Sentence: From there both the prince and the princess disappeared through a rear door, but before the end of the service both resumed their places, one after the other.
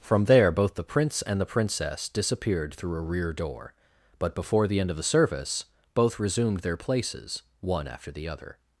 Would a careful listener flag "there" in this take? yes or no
no